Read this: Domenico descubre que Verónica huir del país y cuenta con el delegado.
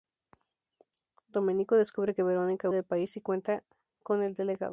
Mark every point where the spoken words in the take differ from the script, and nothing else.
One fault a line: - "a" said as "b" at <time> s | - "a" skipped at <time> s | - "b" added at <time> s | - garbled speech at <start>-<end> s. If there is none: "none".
- "huir" skipped at 2.7 s